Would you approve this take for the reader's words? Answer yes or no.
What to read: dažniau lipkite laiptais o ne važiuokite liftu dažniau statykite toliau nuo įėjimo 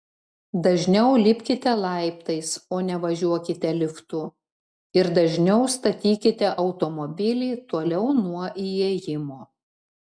no